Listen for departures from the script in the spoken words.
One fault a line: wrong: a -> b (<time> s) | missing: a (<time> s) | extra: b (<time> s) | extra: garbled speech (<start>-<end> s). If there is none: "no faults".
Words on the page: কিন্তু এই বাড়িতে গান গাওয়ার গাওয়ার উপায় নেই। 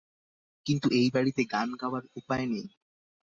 missing: গাওয়ার (2.0 s)